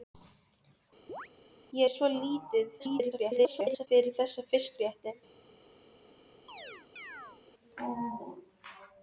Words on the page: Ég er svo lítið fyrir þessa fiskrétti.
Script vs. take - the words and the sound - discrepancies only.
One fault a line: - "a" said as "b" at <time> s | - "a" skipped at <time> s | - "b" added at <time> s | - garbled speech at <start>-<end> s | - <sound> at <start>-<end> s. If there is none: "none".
- chirp at 1.1-1.3 s
- garbled speech at 2.8-3.9 s
- chirp at 6.5-7.4 s